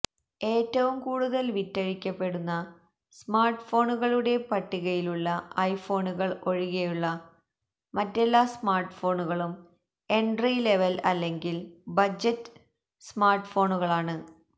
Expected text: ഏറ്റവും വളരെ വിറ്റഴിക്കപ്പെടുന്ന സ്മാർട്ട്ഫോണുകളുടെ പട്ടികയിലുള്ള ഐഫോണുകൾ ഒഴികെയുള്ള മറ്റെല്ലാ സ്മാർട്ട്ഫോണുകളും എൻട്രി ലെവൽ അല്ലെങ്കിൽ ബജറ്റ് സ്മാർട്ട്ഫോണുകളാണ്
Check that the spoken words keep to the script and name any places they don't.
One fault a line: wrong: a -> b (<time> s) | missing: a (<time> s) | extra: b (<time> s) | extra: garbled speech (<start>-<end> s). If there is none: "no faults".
wrong: വളരെ -> കൂടുതൽ (1.0 s)